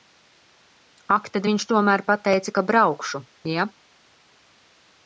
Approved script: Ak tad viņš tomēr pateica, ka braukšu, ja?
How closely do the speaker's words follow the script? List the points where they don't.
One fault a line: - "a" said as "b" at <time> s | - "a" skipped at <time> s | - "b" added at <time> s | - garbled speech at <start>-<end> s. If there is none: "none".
none